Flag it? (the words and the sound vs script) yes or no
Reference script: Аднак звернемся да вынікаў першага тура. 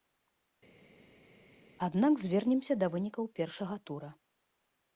no